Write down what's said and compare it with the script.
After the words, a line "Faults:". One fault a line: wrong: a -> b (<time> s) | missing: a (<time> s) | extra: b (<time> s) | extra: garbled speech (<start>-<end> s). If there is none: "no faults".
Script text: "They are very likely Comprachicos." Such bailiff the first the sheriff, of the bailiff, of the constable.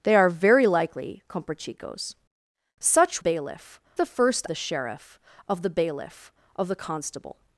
"They are very likely Comprachicos." Such bailiff the first the sheriff, of the bailiff, of the constable.
Faults:
no faults